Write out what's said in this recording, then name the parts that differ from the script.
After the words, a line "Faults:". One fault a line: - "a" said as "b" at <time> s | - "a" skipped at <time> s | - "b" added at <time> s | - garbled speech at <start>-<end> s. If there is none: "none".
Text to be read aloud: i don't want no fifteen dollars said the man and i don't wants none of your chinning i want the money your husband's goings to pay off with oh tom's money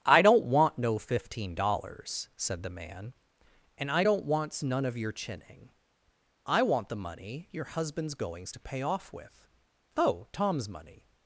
i don't want no fifteen dollars said the man and i don't wants none of your chinning i want the money your husband's goings to pay off with oh tom's money
Faults:
none